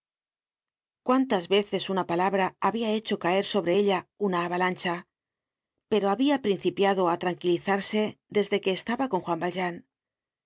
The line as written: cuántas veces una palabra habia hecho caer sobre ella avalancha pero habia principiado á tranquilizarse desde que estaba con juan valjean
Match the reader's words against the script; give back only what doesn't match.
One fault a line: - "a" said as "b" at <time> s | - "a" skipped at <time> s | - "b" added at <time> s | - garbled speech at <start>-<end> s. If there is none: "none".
- "una" added at 4.2 s